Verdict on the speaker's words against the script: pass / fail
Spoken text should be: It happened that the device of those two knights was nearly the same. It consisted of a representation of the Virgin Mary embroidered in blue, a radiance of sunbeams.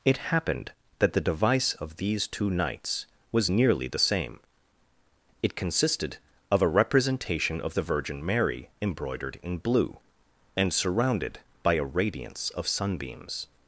fail